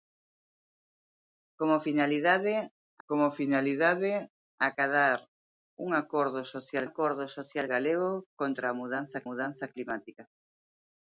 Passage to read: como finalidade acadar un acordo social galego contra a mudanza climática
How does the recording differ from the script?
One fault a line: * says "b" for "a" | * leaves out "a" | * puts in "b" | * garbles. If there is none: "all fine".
* puts in "como finalidade"
* puts in "acordo social"
* puts in "mudanza"